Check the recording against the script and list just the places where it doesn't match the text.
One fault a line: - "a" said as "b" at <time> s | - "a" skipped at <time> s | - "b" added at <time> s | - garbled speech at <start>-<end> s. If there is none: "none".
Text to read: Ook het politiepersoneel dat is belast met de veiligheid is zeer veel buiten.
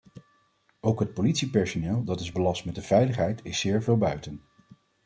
none